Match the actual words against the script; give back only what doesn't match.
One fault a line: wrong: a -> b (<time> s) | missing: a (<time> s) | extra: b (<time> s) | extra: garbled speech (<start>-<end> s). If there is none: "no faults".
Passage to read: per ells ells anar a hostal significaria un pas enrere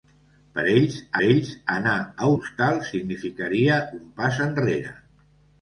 no faults